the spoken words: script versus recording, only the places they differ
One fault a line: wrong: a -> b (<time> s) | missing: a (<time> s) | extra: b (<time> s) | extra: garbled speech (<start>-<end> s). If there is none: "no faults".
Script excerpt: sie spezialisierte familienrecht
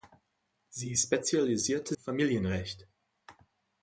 no faults